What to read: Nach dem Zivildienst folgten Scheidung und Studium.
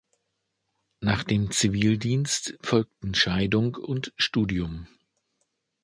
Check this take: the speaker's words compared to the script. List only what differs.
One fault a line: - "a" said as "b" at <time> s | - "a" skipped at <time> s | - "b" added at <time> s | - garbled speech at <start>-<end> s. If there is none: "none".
none